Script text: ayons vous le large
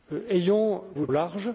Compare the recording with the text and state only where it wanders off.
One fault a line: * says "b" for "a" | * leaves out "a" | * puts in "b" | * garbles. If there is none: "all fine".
all fine